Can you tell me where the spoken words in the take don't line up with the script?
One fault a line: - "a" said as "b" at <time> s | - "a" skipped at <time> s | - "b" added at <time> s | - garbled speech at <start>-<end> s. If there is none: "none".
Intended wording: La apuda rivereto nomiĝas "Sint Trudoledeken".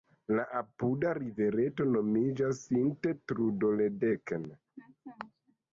none